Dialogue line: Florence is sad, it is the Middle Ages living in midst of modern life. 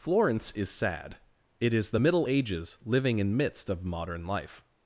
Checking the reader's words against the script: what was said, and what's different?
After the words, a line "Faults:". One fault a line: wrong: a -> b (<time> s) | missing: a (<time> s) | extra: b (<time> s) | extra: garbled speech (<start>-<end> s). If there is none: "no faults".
Florence is sad, it is the Middle Ages living in midst of modern life.
Faults:
no faults